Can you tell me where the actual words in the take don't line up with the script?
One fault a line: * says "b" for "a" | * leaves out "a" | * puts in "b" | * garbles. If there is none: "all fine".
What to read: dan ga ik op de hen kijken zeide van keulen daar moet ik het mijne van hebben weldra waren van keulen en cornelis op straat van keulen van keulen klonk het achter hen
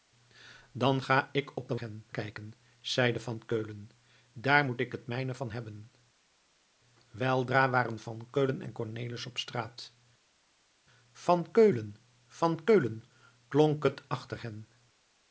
all fine